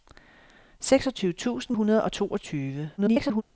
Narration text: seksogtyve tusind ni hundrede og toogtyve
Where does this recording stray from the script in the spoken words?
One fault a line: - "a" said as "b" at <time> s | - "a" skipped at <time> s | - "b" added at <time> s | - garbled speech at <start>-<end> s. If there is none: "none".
- "ni" skipped at 1.8 s
- garbled speech at 3.0-3.4 s